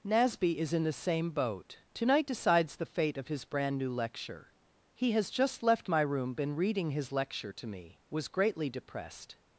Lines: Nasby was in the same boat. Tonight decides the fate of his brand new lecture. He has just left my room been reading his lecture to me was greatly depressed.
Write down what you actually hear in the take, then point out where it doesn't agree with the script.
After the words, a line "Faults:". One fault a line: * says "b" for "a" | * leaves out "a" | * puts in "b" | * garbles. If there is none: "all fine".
Nasby is in the same boat. Tonight decides the fate of his brand new lecture. He has just left my room been reading his lecture to me was greatly depressed.
Faults:
* says "is" for "was"